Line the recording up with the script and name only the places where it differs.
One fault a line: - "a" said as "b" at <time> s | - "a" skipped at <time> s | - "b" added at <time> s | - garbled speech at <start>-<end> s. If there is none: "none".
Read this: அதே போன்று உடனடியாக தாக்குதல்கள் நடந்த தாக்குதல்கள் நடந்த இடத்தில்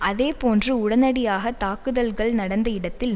- "தாக்குதல்கள் நடந்த" skipped at 2.7 s